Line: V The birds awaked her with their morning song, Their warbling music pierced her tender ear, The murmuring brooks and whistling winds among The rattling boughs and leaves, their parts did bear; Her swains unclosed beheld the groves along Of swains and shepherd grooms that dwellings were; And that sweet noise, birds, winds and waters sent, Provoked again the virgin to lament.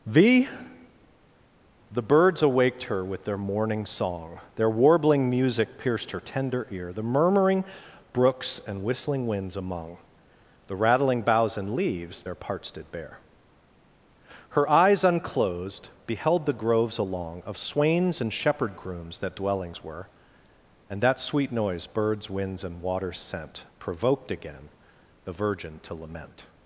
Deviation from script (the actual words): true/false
true